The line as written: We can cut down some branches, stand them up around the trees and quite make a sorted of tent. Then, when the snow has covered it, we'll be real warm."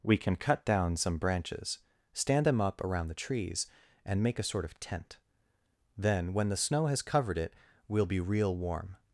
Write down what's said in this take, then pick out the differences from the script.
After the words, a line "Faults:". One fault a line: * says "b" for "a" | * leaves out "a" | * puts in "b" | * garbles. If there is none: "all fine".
We can cut down some branches, stand them up around the trees and make a sort of tent. Then, when the snow has covered it, we'll be real warm."
Faults:
* leaves out "quite"
* says "sort" for "sorted"